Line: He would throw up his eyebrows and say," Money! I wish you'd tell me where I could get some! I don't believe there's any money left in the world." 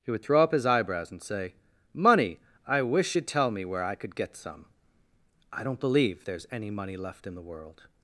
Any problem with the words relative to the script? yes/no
no